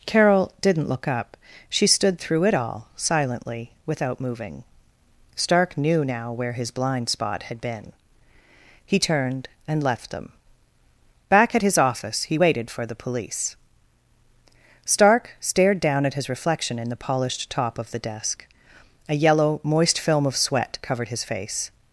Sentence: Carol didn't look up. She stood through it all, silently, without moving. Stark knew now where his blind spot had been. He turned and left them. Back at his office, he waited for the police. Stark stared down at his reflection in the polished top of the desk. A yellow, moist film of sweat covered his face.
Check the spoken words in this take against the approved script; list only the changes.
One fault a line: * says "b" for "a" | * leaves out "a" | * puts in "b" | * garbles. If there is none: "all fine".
all fine